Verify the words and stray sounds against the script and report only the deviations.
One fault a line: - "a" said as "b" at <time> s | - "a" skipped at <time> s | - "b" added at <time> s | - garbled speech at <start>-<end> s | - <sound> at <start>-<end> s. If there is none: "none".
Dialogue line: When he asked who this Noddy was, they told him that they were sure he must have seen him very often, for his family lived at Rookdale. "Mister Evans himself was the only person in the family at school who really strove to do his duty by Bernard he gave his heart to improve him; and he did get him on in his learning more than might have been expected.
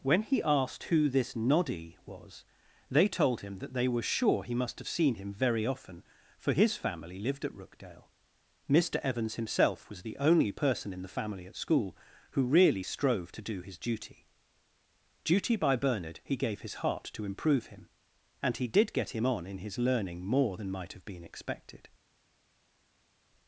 - "duty" added at 15.2 s